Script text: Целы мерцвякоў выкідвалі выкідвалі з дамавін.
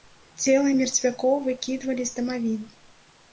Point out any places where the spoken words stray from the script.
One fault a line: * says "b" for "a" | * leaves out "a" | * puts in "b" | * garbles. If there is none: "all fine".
* leaves out "выкідвалі"